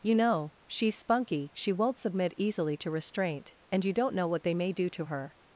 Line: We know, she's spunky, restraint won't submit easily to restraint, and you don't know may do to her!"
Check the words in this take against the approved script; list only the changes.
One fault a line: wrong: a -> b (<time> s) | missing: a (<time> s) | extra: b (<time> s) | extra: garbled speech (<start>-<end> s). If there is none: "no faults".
wrong: We -> You (0.0 s)
wrong: restraint -> she (1.5 s)
extra: what they (4.3 s)